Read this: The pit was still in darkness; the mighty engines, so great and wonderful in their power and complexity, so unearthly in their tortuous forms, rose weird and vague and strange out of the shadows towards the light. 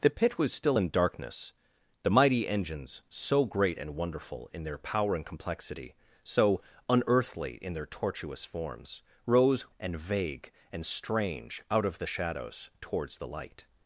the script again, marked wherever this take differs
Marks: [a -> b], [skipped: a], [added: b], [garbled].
The pit was still in darkness; the mighty engines, so great and wonderful in their power and complexity, so unearthly in their tortuous forms, rose [skipped: weird] and vague and strange out of the shadows towards the light.